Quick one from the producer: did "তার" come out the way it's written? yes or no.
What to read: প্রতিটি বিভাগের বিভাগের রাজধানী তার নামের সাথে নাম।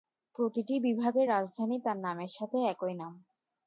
yes